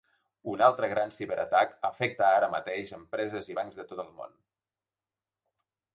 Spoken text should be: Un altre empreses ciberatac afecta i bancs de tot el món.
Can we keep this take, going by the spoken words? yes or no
no